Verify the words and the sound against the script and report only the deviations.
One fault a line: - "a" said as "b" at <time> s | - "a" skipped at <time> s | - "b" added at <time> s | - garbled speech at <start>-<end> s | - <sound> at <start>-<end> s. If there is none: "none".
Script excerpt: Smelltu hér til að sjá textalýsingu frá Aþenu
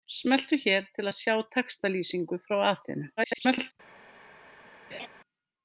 - garbled speech at 3.2-3.7 s
- laugh at 4.9-5.1 s